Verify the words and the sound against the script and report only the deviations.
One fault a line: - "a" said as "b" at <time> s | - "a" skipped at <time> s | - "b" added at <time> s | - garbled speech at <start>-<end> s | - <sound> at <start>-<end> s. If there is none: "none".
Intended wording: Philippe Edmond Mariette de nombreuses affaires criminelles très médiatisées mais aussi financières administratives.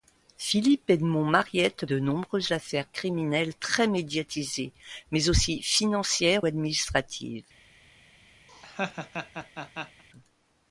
- laugh at 8.5-10.0 s